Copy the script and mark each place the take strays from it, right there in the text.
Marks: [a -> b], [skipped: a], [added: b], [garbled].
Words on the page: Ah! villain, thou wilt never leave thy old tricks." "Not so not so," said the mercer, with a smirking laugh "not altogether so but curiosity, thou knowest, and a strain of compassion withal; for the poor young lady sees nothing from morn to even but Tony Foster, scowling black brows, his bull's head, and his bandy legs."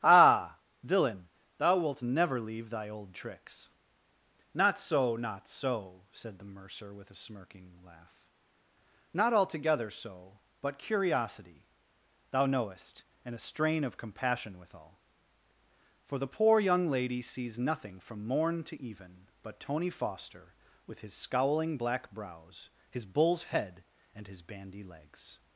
Ah! villain, thou wilt never leave thy old tricks." "Not so not so," said the mercer, with a smirking laugh "not altogether so but curiosity, thou knowest, and a strain of compassion withal; for the poor young lady sees nothing from morn to even but Tony Foster, [added: with his] scowling black brows, his bull's head, and his bandy legs."